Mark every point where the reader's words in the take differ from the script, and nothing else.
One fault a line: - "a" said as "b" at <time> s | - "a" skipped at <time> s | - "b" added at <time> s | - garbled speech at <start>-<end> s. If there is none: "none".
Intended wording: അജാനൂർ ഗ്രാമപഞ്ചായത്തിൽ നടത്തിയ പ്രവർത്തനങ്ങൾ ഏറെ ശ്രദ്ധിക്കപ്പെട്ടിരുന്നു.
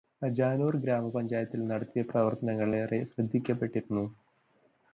none